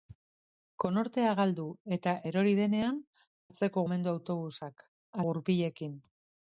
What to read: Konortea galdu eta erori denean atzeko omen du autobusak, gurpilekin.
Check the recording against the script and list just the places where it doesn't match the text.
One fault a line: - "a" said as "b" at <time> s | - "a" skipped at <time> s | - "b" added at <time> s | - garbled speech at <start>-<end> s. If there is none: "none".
none